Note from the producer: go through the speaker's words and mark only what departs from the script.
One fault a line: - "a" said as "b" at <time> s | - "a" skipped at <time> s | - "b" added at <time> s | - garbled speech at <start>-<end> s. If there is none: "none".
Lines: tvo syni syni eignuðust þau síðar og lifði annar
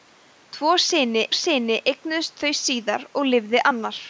none